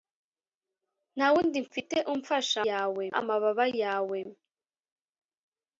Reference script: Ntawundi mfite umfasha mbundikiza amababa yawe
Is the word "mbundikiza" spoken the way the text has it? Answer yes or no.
no